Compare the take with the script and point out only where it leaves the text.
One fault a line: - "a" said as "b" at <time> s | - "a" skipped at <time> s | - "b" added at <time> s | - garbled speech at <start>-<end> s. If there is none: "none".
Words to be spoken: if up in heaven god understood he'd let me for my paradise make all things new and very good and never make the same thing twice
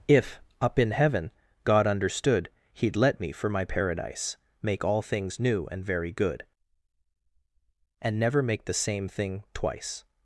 none